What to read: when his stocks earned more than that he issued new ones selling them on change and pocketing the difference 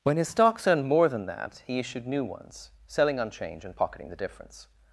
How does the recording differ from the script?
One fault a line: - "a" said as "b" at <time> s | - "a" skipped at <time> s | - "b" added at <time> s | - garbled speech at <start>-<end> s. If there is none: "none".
- "them" skipped at 3.2 s